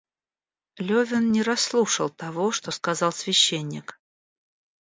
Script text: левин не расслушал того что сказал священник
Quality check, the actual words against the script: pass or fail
pass